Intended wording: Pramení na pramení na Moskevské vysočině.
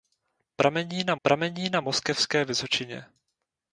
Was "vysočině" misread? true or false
false